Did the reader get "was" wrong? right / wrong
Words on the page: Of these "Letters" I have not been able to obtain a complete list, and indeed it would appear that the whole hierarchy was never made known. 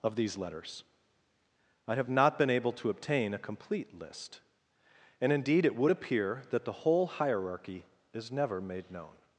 wrong